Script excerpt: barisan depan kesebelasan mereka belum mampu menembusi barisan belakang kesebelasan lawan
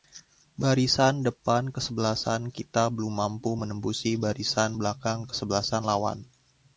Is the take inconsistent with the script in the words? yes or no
yes